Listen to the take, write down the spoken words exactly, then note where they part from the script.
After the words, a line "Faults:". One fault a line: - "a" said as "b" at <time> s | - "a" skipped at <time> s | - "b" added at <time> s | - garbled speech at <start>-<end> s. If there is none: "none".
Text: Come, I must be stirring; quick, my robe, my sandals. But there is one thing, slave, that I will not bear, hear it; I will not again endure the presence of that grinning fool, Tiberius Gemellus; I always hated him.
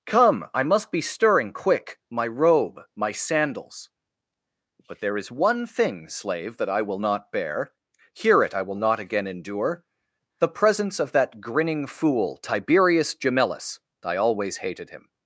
Come, I must be stirring; quick, my robe, my sandals. But there is one thing, slave, that I will not bear, hear it; I will not again endure the presence of that grinning fool, Tiberius Gemellus; I always hated him.
Faults:
none